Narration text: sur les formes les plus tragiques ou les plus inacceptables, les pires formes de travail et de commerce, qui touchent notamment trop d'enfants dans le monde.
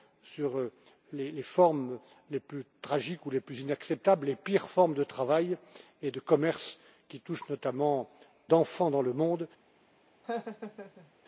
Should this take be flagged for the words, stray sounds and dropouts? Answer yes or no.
yes